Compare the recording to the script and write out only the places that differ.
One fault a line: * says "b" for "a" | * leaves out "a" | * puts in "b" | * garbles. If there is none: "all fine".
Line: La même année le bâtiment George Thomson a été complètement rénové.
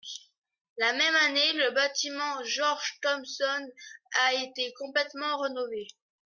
all fine